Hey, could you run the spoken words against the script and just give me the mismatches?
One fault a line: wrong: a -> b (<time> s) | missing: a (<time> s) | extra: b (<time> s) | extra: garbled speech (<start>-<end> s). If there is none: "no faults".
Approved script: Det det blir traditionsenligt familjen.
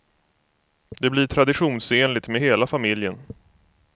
missing: det (1.1 s)
extra: med hela (2.3 s)